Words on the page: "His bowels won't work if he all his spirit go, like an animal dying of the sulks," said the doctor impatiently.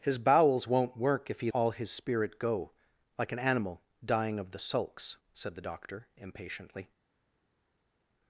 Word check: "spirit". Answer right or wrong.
right